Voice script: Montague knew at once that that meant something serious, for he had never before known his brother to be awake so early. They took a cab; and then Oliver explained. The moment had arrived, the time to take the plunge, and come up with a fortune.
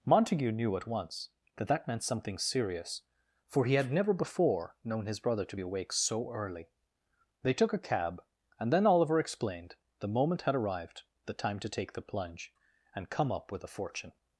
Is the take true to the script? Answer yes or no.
yes